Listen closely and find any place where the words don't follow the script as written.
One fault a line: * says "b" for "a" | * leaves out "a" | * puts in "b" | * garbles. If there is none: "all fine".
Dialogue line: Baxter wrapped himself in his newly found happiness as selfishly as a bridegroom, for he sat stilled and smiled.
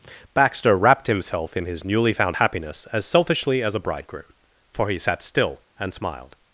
* says "still" for "stilled"